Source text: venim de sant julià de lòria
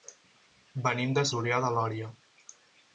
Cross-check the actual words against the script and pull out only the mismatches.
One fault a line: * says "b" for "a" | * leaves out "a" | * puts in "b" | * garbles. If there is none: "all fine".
* leaves out "sant"